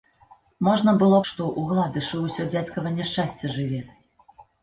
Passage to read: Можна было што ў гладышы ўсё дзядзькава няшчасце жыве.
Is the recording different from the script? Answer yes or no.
no